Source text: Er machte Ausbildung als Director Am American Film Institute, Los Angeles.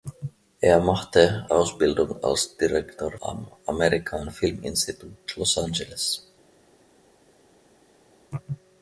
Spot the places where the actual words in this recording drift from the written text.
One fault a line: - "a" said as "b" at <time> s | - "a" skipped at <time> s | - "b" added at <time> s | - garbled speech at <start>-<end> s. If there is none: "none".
none